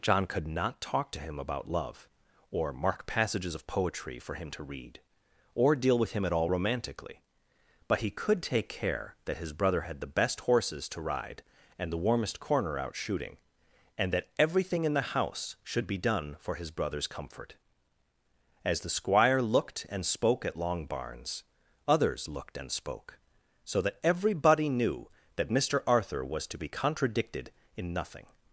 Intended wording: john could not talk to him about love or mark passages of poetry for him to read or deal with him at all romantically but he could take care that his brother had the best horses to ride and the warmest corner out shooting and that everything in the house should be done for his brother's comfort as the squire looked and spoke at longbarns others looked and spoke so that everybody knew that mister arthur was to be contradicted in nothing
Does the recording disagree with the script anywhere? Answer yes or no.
no